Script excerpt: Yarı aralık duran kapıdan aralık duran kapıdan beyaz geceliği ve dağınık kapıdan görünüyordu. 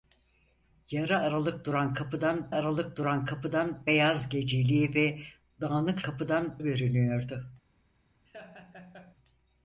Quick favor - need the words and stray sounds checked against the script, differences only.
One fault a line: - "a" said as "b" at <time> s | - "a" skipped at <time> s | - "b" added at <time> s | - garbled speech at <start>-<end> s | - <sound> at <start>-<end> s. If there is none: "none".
- laugh at 8.3-9.2 s